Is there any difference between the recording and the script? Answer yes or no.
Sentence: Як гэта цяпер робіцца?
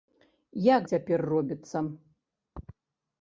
yes